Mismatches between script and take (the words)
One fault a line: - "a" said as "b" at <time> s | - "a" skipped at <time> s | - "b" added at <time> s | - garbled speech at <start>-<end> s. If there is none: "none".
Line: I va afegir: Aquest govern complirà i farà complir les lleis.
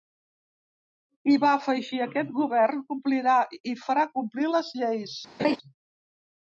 none